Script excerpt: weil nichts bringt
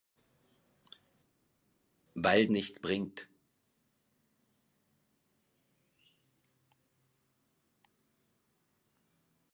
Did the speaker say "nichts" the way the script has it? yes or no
yes